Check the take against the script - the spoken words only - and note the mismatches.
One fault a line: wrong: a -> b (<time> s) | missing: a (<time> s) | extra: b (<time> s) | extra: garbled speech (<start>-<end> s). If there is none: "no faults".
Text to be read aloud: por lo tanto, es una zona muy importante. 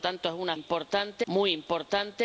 wrong: zona -> importante (0.5 s)